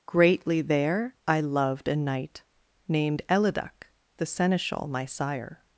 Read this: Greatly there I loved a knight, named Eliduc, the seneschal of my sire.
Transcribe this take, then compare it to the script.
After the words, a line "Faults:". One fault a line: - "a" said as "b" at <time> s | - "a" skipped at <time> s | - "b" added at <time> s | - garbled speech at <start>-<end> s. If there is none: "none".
Greatly there I loved a knight, named Eliduc, the seneschal my sire.
Faults:
- "of" skipped at 4.9 s